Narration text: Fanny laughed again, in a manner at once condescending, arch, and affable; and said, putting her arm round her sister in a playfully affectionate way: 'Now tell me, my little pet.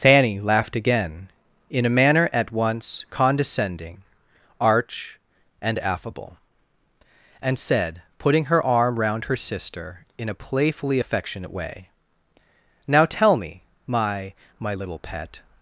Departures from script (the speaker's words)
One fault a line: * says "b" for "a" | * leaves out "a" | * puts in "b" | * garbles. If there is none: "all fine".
* puts in "my"